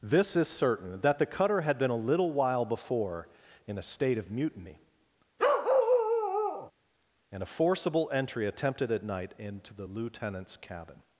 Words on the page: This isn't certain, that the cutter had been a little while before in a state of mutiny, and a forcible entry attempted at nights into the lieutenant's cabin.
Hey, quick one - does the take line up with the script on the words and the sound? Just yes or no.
no